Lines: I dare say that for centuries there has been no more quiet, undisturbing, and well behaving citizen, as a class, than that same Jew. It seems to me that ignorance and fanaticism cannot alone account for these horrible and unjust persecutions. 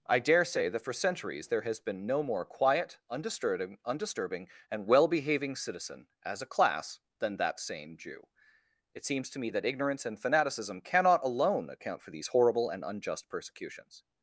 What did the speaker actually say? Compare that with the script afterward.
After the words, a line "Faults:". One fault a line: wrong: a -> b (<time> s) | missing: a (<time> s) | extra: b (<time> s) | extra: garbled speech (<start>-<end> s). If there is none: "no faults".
I dare say that for centuries there has been no more quiet, undisturbing undisturbing, and well behaving citizen, as a class, than that same Jew. It seems to me that ignorance and fanaticism cannot alone account for these horrible and unjust persecutions.
Faults:
extra: undisturbing (3.9 s)